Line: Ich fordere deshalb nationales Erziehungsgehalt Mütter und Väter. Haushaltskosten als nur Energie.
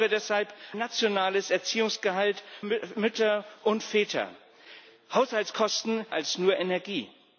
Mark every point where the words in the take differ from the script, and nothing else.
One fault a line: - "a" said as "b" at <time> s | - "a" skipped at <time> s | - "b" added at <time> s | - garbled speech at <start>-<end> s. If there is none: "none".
none